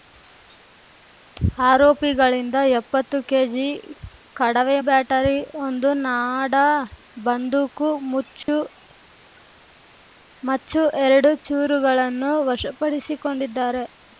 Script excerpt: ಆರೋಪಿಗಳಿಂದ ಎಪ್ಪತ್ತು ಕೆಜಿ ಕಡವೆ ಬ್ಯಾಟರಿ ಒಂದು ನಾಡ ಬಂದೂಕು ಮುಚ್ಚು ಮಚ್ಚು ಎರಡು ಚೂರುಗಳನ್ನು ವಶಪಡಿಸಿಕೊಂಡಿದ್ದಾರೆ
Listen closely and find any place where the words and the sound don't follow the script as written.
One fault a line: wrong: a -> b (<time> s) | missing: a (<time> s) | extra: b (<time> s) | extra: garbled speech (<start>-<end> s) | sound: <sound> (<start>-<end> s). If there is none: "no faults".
sound: dropout (8.4-8.5 s)